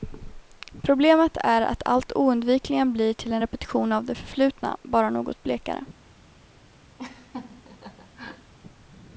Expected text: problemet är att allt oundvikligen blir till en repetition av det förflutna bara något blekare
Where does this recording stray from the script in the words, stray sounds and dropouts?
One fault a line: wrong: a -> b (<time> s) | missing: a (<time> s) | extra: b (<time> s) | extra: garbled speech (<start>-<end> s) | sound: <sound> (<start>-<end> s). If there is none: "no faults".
sound: laugh (7.0-8.5 s)